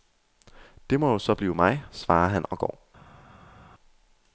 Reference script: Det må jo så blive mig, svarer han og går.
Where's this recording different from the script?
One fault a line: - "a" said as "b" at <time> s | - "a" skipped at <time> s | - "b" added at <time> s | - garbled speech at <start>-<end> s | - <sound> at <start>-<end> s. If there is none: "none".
none